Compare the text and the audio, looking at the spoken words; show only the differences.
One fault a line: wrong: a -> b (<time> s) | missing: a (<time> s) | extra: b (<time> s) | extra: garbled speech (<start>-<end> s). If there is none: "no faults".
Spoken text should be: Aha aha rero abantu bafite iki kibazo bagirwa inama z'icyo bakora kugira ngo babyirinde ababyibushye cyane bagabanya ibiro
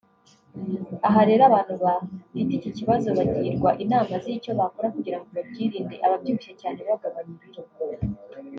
missing: aha (1.2 s)